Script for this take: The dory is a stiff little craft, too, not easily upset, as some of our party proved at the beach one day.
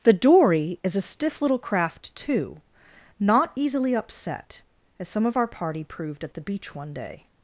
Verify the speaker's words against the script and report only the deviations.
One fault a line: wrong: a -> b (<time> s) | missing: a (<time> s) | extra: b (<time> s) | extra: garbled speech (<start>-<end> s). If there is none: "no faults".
no faults